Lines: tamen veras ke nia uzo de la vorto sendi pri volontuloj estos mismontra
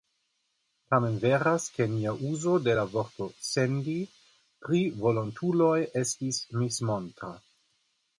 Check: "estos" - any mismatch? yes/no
yes